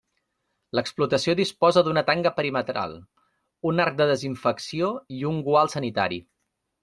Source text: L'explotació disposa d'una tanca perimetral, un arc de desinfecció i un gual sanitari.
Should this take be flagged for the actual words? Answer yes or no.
no